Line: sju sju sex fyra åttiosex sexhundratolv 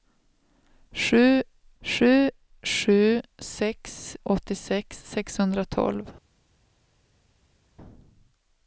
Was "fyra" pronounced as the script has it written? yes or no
no